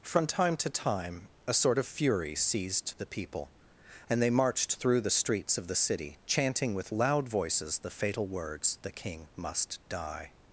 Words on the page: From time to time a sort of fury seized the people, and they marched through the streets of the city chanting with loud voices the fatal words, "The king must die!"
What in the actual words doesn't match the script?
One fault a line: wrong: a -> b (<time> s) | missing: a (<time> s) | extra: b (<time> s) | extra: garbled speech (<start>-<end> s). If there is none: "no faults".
no faults